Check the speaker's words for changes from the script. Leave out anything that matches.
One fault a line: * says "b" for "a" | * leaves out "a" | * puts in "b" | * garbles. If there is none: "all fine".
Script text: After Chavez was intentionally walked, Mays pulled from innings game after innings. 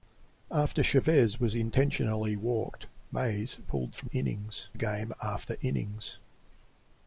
all fine